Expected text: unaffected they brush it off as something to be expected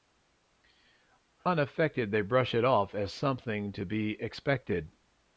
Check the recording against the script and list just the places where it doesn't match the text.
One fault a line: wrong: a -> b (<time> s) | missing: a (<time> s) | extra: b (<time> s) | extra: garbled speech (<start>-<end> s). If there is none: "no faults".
no faults